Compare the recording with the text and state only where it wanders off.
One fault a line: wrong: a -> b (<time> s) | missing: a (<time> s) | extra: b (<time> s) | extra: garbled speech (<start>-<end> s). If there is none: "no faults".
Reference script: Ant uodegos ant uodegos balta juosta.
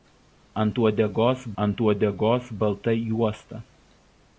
no faults